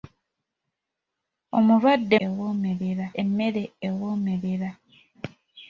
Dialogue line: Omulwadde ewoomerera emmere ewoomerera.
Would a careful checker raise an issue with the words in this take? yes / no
no